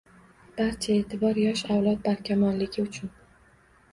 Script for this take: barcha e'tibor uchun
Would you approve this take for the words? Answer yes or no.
no